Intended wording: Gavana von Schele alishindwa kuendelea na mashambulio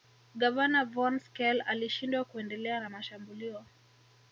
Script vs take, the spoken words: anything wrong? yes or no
no